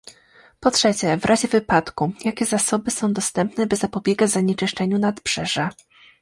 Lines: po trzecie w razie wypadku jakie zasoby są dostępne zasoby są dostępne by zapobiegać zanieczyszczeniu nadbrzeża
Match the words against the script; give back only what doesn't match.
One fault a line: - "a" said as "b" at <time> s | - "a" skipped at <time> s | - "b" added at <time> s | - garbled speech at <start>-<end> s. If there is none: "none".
- "zasoby są dostępne" skipped at 3.7 s